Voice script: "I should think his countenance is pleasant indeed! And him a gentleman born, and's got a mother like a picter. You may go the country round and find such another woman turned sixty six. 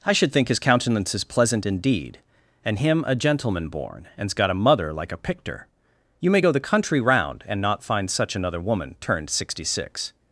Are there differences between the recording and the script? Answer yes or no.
yes